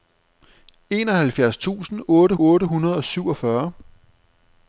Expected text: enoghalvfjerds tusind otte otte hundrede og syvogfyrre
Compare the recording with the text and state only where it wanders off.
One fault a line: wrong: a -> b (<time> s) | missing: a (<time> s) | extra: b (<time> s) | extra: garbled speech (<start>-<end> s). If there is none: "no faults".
no faults